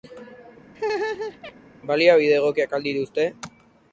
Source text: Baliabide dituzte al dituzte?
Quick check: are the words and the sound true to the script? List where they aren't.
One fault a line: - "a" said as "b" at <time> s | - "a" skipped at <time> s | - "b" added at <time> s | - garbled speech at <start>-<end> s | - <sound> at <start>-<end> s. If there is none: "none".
- laugh at 0.7-1.5 s
- "dituzte" said as "egokiak" at 2.4 s